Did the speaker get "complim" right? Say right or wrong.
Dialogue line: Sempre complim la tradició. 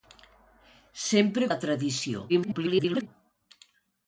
wrong